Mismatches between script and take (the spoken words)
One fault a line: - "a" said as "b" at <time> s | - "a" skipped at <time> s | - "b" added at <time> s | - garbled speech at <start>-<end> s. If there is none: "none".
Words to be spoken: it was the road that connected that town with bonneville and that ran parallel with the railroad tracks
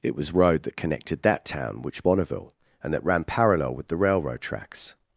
- "the" skipped at 0.3 s
- "with" said as "which" at 1.8 s